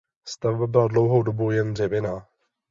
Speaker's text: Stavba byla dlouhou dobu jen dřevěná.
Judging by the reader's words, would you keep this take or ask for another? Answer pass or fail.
pass